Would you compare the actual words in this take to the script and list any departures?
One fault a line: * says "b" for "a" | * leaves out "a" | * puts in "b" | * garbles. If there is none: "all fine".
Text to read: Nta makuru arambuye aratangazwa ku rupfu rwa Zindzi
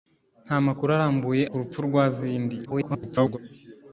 * leaves out "aratangazwa"
* garbles